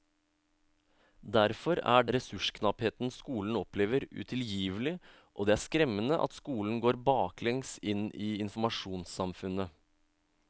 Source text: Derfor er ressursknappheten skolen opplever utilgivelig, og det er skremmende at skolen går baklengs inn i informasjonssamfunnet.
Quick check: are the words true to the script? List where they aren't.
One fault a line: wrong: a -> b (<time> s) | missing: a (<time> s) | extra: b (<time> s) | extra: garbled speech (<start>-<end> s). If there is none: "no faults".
no faults